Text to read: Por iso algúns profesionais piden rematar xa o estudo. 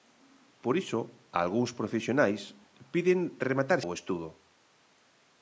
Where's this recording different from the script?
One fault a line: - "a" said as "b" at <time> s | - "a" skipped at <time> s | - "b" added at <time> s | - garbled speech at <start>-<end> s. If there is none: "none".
- "xa" skipped at 3.8 s